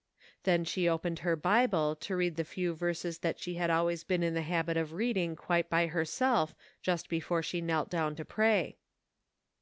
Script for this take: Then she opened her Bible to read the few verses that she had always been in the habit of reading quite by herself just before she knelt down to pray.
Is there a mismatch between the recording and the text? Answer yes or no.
no